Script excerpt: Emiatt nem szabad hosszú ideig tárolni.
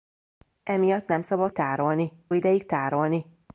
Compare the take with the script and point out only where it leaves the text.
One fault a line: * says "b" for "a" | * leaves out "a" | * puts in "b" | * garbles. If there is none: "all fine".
* says "tárolni" for "hosszú"